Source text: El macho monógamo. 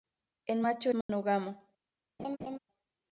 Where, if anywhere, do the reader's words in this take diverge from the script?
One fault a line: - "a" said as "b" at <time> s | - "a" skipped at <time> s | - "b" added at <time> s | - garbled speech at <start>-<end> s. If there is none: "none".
none